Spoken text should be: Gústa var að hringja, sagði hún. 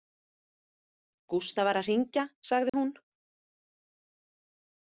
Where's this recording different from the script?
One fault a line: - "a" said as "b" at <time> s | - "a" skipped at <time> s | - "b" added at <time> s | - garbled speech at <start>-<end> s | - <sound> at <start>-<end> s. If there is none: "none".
- dropout at 2.7-2.7 s